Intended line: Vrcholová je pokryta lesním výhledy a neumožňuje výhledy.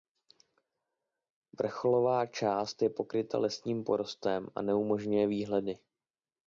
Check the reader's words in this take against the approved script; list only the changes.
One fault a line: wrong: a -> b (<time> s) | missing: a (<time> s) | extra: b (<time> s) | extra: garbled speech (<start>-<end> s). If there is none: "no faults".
extra: část (2.2 s)
wrong: výhledy -> porostem (3.8 s)